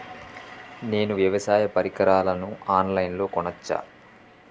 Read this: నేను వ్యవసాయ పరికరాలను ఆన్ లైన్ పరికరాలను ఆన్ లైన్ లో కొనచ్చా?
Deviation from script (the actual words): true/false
true